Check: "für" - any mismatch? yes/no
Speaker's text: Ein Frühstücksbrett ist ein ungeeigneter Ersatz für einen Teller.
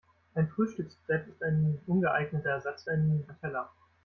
yes